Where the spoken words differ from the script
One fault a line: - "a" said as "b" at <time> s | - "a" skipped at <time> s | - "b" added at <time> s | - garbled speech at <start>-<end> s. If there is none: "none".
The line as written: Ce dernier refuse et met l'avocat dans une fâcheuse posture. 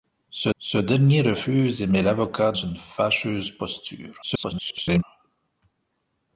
- "ce" added at 0.6 s
- "dans" skipped at 2.5 s
- garbled speech at 4.2-5.0 s